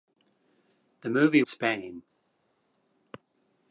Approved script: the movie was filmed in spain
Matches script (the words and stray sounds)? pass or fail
fail